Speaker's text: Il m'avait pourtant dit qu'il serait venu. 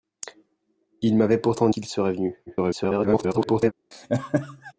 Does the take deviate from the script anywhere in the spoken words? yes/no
yes